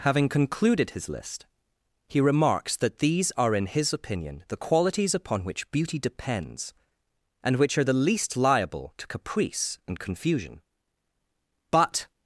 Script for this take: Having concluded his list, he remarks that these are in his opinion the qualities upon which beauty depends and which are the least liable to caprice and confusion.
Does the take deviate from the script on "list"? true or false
false